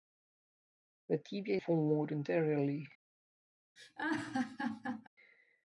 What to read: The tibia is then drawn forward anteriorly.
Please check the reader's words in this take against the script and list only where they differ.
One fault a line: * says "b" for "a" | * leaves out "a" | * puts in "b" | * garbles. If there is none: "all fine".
* leaves out "is then drawn"